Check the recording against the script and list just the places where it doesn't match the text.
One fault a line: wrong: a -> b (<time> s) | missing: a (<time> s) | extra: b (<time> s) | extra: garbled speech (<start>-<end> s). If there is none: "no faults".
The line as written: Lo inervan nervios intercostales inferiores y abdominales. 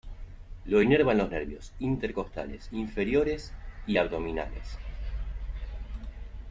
extra: los (1.2 s)